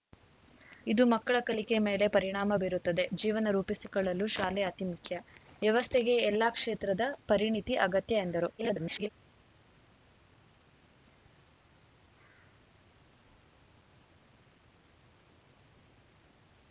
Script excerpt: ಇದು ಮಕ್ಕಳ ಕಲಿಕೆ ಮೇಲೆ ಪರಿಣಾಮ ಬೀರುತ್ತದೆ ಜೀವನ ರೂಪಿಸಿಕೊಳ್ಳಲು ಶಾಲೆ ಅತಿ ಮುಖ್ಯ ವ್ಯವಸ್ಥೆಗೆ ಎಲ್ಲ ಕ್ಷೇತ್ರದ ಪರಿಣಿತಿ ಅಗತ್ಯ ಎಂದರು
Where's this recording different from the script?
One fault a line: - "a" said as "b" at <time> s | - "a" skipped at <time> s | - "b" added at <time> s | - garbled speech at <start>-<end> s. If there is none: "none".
- garbled speech at 8.6-9.1 s